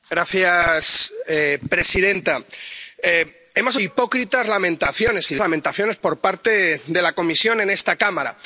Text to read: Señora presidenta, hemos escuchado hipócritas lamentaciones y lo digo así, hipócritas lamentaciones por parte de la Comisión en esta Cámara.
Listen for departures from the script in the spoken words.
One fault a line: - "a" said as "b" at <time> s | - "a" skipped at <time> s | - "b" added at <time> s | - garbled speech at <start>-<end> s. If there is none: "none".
- "escuchado" skipped at 3.8 s
- "digo así hipócritas" skipped at 5.4 s